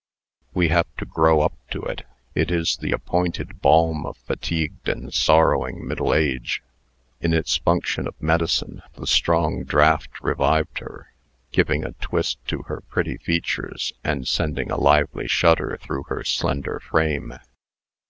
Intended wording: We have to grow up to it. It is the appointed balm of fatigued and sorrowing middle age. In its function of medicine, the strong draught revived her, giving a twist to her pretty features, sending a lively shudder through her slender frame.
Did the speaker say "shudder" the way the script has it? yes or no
yes